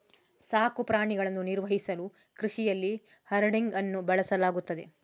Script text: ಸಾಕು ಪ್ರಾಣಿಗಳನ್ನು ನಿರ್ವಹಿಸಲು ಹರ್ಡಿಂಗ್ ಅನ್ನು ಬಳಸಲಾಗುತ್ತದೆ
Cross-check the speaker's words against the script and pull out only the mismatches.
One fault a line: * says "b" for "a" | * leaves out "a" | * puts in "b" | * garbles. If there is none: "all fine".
* puts in "ಕೃಷಿಯಲ್ಲಿ"